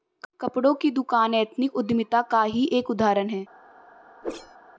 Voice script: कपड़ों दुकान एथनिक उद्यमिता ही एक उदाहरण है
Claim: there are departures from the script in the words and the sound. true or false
true